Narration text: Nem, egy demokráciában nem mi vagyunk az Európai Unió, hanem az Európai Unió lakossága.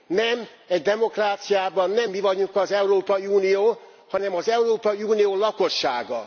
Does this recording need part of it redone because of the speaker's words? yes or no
no